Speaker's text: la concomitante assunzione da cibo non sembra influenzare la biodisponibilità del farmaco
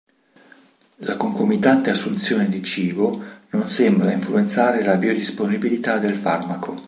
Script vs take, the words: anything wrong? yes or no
yes